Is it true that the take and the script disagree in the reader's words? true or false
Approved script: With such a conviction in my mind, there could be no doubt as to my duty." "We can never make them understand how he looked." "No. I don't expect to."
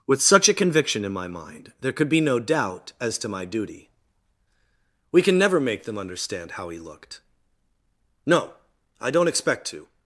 false